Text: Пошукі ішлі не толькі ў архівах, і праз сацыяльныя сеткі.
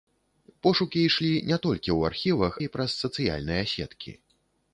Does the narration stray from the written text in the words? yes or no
no